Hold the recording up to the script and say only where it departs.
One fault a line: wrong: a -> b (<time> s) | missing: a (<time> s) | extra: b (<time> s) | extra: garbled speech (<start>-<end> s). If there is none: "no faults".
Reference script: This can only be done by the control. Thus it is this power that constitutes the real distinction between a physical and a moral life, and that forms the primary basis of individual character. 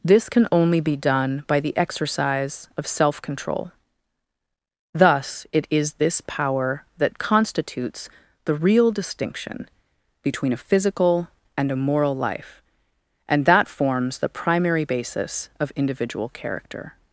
extra: exercise of self (1.8 s)